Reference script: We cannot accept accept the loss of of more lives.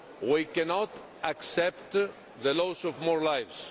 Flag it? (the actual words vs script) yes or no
yes